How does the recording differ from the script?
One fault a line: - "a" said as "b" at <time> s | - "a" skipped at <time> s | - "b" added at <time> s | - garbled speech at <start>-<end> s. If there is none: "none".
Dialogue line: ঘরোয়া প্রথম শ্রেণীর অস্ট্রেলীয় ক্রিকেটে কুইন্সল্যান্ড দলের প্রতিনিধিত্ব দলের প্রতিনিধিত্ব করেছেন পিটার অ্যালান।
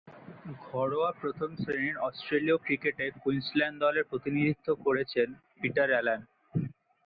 - "দলের প্রতিনিধিত্ব" skipped at 4.7 s